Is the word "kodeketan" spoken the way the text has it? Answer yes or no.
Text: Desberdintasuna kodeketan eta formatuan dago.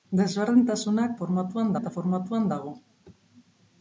no